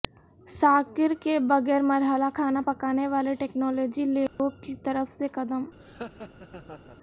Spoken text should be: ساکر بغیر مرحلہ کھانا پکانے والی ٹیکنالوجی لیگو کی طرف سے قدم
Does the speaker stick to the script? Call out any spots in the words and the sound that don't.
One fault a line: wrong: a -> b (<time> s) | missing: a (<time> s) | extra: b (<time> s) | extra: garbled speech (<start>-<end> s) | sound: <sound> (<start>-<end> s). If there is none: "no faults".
extra: کے (1.2 s)
sound: dropout (4.3-4.4 s)
sound: laugh (5.8-7.0 s)